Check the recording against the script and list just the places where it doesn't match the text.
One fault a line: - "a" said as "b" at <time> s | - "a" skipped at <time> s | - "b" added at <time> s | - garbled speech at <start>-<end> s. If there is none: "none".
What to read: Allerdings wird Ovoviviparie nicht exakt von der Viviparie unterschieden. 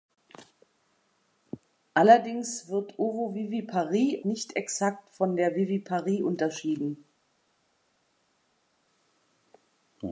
none